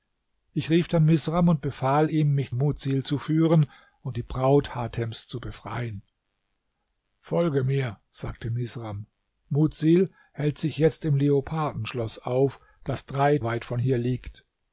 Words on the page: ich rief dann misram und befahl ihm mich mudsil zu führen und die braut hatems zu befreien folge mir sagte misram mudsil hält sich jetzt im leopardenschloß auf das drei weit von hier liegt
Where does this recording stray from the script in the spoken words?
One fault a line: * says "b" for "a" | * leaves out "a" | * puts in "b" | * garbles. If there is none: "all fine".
all fine